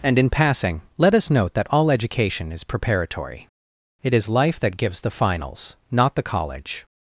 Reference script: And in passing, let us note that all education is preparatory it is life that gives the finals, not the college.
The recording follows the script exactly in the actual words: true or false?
true